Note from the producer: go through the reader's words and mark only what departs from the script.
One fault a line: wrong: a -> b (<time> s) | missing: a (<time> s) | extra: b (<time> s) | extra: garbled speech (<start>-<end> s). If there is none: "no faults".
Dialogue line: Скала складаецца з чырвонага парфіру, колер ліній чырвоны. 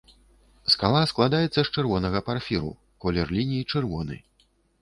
no faults